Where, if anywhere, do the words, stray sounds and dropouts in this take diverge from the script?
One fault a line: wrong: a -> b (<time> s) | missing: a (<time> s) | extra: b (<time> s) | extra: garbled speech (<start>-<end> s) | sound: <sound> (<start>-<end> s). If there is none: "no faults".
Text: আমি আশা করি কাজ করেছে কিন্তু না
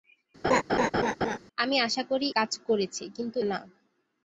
sound: laugh (0.4-1.4 s)